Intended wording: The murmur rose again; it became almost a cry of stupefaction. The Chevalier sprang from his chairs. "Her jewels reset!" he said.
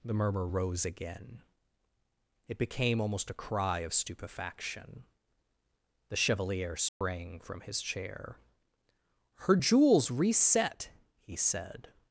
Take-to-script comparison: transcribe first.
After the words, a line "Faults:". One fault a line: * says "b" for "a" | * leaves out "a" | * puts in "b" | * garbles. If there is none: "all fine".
The murmur rose again; it became almost a cry of stupefaction. The Chevalier sprang from his chair. "Her jewels reset!" he said.
Faults:
* says "chair" for "chairs"